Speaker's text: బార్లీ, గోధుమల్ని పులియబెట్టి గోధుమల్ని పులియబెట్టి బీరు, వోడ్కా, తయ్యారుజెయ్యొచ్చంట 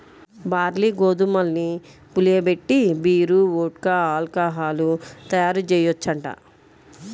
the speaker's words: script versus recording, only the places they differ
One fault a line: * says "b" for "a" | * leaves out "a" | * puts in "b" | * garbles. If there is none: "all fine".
* leaves out "గోధుమల్ని పులియబెట్టి"
* puts in "ఆల్కహాలు"